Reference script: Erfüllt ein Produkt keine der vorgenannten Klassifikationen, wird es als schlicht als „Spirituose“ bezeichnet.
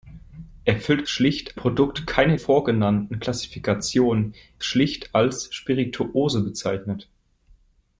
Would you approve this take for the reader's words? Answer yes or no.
no